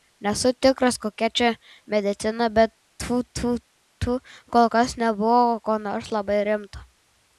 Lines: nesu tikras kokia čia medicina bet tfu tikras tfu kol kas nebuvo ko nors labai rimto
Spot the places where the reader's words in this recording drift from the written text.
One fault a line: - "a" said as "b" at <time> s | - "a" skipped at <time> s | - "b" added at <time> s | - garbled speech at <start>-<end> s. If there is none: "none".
- "tikras" said as "tfu" at 3.3 s